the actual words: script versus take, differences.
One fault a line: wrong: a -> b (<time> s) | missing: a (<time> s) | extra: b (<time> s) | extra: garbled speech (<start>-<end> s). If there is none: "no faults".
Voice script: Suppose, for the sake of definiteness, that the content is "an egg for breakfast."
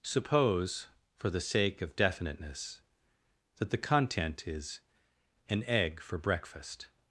no faults